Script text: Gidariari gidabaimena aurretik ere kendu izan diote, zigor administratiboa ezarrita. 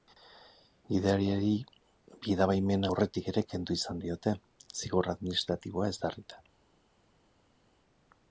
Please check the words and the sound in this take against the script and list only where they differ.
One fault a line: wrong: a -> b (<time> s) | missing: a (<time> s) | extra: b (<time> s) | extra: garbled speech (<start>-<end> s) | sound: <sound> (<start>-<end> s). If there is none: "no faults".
no faults